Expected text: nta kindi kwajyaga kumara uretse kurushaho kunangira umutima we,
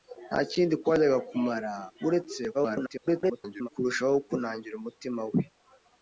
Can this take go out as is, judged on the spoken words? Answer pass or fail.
fail